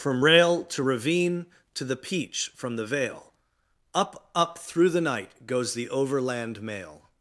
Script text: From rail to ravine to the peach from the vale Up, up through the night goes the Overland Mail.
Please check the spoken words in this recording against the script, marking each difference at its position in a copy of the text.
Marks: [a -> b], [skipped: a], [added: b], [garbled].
From rail to ravine to the peach from the vale Up, up through the night goes the Overland Mail.